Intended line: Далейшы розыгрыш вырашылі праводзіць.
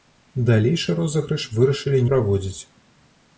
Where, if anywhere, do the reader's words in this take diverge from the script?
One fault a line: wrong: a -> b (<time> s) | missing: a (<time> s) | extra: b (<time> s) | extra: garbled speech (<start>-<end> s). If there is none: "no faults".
no faults